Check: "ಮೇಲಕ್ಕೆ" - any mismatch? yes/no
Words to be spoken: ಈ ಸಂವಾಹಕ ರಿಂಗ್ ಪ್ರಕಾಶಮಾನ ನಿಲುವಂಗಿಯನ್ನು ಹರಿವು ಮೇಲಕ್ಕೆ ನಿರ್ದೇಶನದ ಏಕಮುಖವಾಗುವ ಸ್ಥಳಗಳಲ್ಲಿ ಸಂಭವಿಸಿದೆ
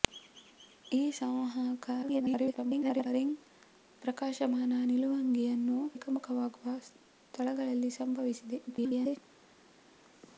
yes